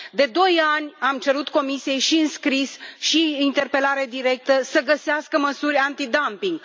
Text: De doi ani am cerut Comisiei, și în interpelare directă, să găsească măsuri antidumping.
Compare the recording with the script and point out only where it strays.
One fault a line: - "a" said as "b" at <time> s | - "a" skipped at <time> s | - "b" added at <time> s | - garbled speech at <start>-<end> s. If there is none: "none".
- "scris și prin" added at 2.3 s